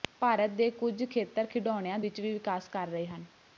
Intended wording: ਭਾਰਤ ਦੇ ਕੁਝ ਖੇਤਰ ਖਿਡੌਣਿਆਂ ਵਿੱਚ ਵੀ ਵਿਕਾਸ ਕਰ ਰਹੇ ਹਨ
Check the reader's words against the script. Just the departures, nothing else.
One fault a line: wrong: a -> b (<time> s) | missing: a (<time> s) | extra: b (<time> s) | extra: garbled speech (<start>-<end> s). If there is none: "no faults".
no faults